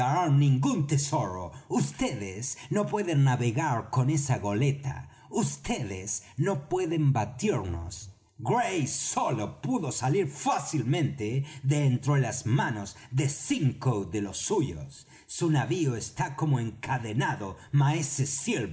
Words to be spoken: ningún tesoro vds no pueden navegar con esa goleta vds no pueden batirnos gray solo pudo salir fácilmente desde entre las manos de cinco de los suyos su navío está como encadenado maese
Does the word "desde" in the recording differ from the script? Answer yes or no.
yes